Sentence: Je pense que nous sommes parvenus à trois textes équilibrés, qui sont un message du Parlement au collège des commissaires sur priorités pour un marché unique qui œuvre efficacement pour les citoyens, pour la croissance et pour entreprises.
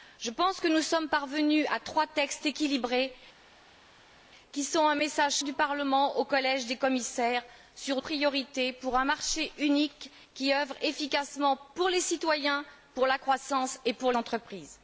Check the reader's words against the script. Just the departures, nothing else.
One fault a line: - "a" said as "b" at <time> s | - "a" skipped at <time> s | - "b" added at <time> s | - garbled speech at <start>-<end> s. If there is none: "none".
none